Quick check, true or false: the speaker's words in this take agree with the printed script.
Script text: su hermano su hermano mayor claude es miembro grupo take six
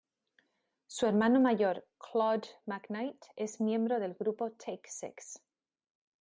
false